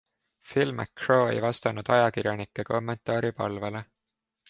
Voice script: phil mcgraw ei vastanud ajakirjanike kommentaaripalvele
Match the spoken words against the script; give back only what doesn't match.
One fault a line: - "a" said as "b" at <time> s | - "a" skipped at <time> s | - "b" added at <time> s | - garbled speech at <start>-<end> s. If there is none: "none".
none